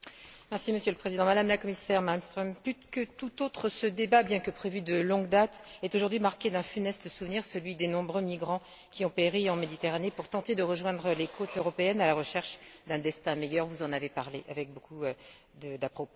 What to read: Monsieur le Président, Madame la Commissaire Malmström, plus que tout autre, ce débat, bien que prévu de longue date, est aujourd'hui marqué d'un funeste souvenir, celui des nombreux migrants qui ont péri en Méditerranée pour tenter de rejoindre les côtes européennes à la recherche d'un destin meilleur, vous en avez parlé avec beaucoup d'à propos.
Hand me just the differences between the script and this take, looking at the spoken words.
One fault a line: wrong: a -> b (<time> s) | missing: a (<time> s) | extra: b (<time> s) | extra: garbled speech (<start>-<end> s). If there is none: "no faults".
no faults